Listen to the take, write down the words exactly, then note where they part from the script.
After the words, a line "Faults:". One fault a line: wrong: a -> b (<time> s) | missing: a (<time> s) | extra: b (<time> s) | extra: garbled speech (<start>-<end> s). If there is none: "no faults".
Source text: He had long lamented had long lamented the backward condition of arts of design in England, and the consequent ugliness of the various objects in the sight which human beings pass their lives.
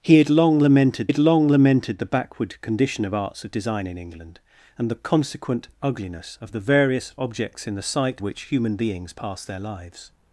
He had long lamented had long lamented the backward condition of arts of design in England, and the consequent ugliness of the various objects in the sight which human beings pass their lives.
Faults:
no faults